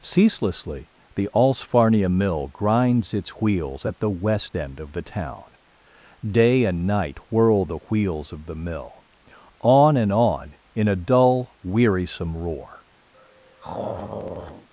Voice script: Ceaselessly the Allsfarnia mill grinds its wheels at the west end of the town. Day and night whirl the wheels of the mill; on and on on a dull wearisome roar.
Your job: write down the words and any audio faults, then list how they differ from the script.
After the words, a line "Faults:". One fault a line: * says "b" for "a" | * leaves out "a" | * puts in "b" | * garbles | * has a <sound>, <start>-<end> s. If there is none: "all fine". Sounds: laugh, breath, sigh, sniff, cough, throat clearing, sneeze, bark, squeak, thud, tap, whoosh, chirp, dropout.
Ceaselessly the Allsfarnia mill grinds its wheels at the west end of the town. Day and night whirl the wheels of the mill; on and on in a dull wearisome roar.
Faults:
* says "in" for "on"
* has a throat clearing, 13.1-14.7 s